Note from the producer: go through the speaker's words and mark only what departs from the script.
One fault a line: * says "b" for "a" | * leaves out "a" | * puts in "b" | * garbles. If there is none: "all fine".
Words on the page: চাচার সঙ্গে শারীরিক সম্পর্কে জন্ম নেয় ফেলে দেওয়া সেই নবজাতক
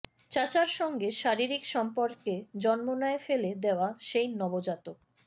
all fine